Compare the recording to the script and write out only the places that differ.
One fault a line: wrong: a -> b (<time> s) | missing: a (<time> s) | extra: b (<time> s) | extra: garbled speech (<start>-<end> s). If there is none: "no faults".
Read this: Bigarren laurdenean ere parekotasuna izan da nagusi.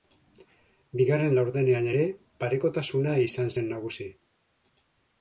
wrong: da -> zen (3.5 s)